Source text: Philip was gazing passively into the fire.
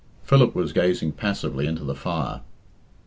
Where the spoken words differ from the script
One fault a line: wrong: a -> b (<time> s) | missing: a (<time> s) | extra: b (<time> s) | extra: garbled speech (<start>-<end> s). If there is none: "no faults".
no faults